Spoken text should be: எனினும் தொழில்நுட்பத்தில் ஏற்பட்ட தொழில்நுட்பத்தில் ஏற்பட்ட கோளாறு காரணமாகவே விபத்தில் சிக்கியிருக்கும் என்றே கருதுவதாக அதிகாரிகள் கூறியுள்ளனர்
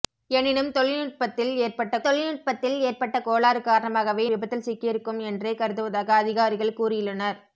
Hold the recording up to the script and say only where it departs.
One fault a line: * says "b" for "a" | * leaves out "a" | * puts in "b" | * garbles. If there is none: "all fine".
all fine